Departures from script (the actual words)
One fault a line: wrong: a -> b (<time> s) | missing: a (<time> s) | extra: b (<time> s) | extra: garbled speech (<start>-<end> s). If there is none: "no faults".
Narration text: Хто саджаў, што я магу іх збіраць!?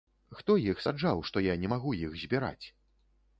extra: іх (0.7 s)
extra: не (1.6 s)